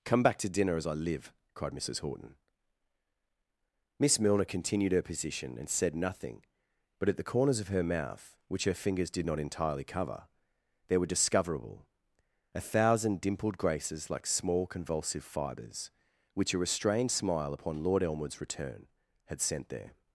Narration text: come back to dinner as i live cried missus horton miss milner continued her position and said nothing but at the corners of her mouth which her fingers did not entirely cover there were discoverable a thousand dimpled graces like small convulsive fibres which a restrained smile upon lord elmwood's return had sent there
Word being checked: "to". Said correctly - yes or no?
yes